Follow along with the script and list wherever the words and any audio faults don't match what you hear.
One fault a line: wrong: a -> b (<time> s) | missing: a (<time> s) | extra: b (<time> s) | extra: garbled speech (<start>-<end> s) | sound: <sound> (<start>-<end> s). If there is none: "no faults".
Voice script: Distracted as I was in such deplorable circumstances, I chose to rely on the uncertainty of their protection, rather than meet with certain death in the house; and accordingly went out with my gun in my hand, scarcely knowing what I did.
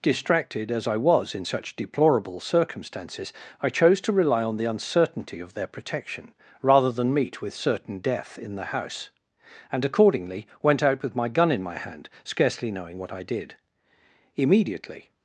extra: Immediately (14.4 s)